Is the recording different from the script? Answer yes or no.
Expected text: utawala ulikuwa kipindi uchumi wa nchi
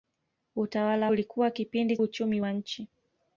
no